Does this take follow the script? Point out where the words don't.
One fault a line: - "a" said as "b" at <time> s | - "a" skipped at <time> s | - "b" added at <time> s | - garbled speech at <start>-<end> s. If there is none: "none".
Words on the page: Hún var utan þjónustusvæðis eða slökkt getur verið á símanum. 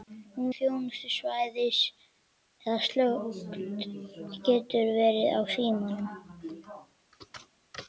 - "var utan" skipped at 0.5 s